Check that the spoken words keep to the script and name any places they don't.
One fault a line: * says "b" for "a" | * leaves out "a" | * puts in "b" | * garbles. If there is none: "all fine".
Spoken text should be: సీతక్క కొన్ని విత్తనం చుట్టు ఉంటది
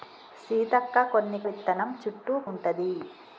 all fine